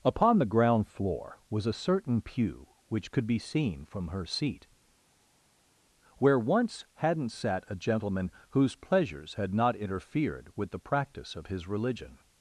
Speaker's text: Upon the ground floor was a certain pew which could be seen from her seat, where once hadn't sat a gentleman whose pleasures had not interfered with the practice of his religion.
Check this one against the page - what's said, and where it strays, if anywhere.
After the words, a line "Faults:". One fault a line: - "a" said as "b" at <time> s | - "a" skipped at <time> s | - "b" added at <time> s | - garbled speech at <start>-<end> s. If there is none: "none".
Upon the ground floor was a certain pew which could be seen from her seat, where once hadn't sat a gentleman whose pleasures had not interfered with the practice of his religion.
Faults:
none